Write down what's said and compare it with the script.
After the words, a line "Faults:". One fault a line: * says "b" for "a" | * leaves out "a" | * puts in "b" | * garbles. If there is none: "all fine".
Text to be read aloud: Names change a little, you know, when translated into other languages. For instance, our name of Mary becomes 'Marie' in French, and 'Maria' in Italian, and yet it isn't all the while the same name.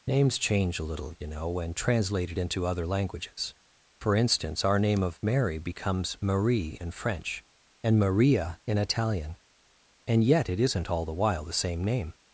Names change a little, you know, when translated into other languages. For instance, our name of Mary becomes 'Marie' in French, and 'Maria' in Italian, and yet it isn't all the while the same name.
Faults:
all fine